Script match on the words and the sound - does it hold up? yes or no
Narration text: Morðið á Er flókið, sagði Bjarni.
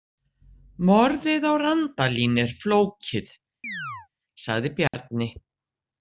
no